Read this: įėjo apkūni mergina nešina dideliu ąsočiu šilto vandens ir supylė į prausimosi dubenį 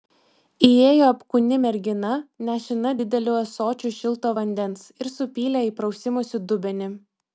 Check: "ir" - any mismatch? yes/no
no